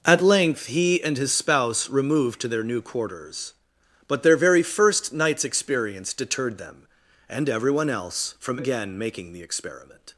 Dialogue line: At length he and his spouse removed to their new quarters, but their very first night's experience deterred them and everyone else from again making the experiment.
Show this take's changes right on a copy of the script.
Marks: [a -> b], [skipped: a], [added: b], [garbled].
At length he and his spouse removed to their new quarters, but their very first night's experience deterred them and everyone else from again making the experiment.